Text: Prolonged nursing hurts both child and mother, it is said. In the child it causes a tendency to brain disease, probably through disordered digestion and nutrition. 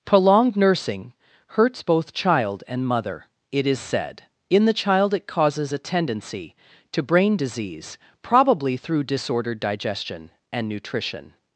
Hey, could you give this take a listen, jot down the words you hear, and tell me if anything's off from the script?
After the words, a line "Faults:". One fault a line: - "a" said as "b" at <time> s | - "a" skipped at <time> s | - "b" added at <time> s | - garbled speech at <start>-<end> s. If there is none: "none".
Prolonged nursing hurts both child and mother, it is said. In the child it causes a tendency to brain disease, probably through disordered digestion and nutrition.
Faults:
none